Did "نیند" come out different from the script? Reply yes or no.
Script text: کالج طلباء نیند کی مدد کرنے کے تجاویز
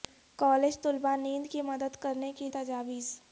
no